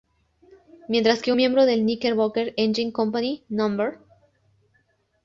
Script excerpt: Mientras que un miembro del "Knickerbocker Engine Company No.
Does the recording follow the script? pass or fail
fail